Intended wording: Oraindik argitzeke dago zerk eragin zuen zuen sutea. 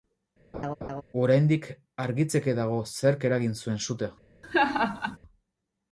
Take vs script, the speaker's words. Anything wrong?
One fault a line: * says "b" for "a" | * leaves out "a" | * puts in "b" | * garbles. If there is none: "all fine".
* leaves out "zuen"